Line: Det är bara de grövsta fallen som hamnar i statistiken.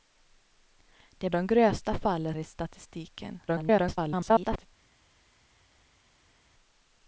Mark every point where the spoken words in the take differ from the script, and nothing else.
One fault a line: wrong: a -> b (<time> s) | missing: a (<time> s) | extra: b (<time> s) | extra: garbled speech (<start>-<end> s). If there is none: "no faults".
missing: bara (1.3 s)
missing: som hamnar (2.3 s)
extra: garbled speech (3.5-4.7 s)